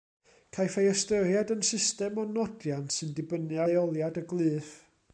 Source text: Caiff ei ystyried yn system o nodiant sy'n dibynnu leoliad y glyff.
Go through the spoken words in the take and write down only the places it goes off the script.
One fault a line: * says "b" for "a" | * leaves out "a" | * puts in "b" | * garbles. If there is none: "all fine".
all fine